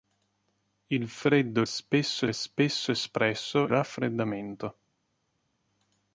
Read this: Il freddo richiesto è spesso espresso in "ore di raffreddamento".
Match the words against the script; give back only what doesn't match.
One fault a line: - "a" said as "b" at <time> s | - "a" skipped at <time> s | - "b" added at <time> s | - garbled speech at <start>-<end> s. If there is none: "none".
- "richiesto" said as "spesso" at 1.6 s
- "in ore di" skipped at 3.7 s